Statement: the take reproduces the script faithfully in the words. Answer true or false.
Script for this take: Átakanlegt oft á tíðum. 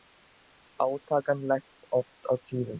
true